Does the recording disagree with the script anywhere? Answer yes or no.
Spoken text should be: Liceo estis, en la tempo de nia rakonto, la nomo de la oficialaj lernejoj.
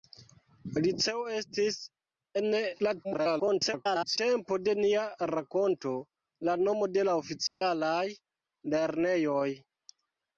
yes